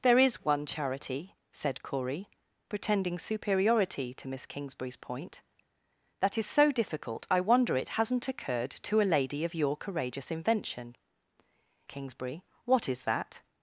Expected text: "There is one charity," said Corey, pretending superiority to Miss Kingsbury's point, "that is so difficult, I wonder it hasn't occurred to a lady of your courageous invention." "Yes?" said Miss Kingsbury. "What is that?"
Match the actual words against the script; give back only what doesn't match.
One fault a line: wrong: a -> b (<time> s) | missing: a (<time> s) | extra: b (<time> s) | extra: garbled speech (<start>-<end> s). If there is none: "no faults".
missing: Yes said Miss (10.9 s)